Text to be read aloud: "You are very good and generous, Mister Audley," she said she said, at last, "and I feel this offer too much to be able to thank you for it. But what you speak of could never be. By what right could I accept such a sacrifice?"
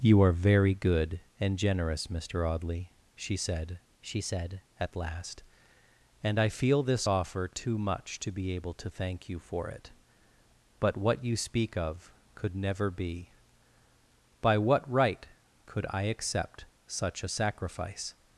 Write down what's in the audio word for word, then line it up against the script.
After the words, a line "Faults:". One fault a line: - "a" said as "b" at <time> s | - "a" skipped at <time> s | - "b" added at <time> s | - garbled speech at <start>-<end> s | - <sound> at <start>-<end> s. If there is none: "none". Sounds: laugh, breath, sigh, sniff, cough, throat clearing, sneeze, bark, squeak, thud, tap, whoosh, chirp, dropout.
"You are very good and generous, Mister Audley," she said she said, at last, "and I feel this offer too much to be able to thank you for it. But what you speak of could never be. By what right could I accept such a sacrifice?"
Faults:
none